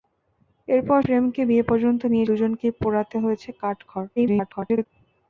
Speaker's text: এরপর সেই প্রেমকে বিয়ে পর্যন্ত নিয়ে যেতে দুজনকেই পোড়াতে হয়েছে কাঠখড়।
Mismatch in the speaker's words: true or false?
true